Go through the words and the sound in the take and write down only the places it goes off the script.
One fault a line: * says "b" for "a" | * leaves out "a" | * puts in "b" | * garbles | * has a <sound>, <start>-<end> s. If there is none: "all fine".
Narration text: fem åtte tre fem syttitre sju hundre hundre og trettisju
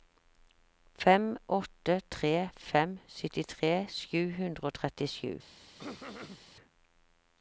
* leaves out "hundre"
* has a throat clearing, 5.8-6.4 s